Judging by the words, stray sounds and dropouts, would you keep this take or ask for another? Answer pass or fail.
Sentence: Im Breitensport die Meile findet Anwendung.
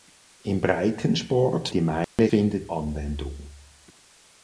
fail